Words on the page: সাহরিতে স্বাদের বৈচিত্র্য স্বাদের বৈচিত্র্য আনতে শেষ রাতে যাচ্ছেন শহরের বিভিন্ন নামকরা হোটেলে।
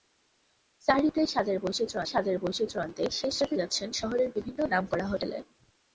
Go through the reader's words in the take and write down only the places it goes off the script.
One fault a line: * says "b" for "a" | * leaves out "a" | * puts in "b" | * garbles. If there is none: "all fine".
all fine